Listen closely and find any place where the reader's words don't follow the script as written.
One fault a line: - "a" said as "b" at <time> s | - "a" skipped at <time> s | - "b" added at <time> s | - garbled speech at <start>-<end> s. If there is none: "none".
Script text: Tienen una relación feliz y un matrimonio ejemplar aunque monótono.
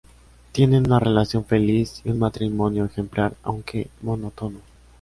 none